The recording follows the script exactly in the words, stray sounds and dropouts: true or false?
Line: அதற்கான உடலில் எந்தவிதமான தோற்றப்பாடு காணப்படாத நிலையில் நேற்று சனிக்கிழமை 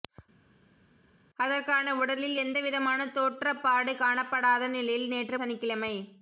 true